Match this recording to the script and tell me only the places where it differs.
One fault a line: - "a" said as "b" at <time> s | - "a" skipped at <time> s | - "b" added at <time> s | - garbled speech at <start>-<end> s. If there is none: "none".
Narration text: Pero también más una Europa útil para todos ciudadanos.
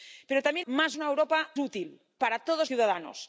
none